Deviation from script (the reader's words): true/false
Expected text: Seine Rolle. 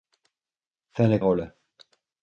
false